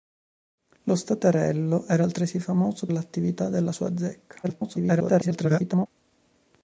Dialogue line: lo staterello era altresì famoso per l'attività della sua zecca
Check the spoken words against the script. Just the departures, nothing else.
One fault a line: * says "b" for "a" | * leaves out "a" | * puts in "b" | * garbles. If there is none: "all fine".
* leaves out "per"
* garbles